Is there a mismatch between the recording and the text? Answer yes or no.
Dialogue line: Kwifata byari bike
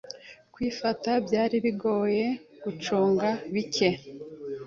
yes